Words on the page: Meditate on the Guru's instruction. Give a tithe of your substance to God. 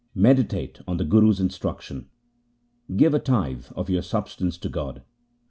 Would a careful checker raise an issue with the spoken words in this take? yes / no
no